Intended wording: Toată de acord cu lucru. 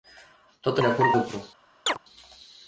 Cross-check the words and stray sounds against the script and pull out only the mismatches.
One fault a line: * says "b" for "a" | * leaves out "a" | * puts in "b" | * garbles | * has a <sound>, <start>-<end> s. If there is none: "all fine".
* has a chirp, 1.9-2.0 s